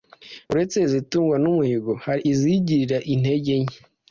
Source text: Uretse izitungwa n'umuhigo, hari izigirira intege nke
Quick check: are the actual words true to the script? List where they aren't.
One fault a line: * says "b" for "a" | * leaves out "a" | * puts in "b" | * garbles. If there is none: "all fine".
all fine